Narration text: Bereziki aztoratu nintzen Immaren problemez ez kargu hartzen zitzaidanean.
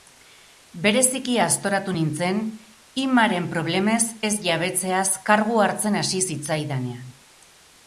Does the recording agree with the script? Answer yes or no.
no